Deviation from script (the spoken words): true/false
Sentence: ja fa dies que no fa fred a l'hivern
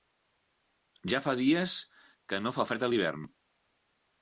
false